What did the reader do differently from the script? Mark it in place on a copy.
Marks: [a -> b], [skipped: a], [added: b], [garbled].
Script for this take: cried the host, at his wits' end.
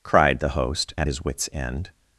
cried the host, at his wits' end.